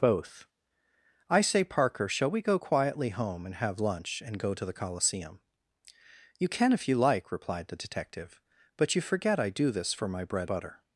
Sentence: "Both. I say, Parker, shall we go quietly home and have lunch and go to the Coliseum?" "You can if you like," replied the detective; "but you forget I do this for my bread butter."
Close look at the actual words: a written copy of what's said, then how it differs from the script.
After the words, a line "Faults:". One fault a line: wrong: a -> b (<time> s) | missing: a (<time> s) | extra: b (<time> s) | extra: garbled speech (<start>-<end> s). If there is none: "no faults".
"Both. I say, Parker, shall we go quietly home and have lunch and go to the Coliseum?" "You can if you like," replied the detective; "but you forget I do this for my bread butter."
Faults:
no faults